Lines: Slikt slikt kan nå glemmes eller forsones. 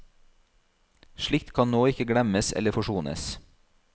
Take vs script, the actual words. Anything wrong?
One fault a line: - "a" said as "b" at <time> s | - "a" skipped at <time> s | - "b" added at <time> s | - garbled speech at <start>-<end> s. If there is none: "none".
- "slikt" skipped at 1.5 s
- "ikke" added at 1.9 s